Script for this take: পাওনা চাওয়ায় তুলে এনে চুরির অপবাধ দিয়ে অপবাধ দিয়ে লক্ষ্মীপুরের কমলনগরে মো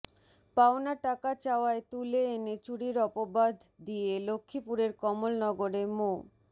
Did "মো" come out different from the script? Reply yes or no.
no